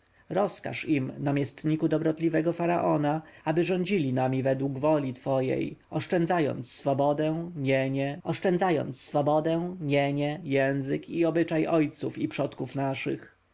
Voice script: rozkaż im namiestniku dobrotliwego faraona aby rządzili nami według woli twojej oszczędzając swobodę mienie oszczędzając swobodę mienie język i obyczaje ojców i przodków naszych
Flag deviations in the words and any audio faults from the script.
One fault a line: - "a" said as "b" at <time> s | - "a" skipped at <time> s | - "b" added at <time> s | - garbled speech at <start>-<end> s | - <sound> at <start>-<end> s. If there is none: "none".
none